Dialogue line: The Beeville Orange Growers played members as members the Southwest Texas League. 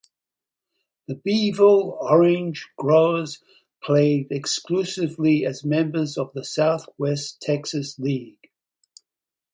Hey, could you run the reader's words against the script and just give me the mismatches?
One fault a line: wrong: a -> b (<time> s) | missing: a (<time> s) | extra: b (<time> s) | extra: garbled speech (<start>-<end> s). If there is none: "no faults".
wrong: members -> exclusively (4.3 s)
extra: of (6.2 s)